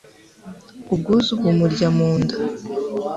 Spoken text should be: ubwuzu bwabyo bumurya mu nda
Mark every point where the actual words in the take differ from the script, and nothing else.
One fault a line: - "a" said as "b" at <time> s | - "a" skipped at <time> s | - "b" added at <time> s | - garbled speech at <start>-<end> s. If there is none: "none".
- "bwabyo" skipped at 1.3 s